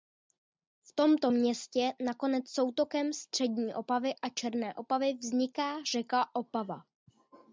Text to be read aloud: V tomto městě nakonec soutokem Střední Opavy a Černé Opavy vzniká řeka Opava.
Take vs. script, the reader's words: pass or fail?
pass